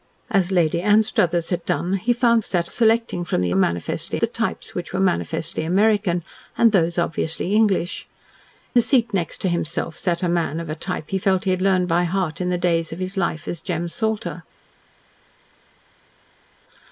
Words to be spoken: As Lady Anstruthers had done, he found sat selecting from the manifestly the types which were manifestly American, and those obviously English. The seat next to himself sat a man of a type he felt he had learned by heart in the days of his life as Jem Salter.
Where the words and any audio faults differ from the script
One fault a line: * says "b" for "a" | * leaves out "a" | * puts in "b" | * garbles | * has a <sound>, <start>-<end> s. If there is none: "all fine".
all fine